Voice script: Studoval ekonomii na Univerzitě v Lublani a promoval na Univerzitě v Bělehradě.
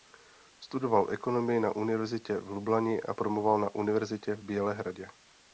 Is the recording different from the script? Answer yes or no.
no